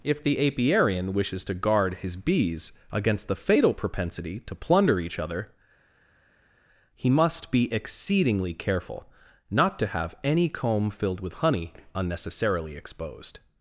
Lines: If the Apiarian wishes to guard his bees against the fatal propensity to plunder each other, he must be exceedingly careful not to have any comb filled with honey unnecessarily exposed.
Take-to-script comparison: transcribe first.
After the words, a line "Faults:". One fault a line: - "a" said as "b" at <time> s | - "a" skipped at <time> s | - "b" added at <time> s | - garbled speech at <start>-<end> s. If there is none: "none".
If the Apiarian wishes to guard his bees against the fatal propensity to plunder each other, he must be exceedingly careful not to have any comb filled with honey unnecessarily exposed.
Faults:
none